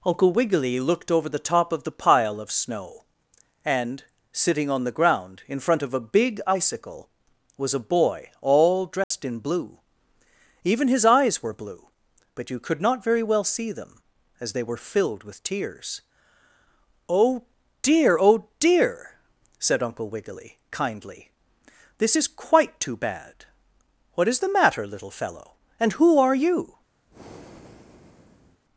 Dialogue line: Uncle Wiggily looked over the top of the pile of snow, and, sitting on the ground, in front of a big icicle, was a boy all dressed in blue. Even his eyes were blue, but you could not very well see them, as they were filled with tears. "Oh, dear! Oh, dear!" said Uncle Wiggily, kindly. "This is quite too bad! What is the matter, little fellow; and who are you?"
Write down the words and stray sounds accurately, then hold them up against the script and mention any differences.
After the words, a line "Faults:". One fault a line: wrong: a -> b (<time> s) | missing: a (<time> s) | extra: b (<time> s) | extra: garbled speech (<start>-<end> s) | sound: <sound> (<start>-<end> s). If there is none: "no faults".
Uncle Wiggily looked over the top of the pile of snow, and, sitting on the ground, in front of a big icicle, was a boy all dressed in blue. Even his eyes were blue, but you could not very well see them, as they were filled with tears. "Oh, dear! Oh, dear!" said Uncle Wiggily, kindly. "This is quite too bad! What is the matter, little fellow; and who are you?"
Faults:
sound: dropout (9.0-9.1 s)
sound: breath (27.1-28.6 s)